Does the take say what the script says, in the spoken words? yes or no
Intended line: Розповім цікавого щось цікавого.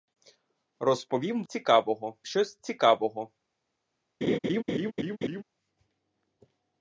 yes